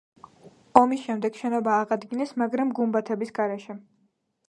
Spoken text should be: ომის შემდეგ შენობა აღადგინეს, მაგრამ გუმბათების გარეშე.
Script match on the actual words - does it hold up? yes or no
yes